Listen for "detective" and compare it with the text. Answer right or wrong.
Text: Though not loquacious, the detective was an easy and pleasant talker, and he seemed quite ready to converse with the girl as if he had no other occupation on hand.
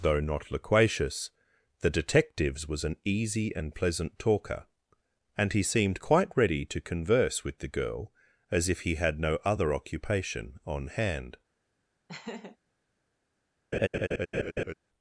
wrong